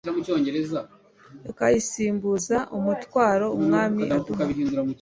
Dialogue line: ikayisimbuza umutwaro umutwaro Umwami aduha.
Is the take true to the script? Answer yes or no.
no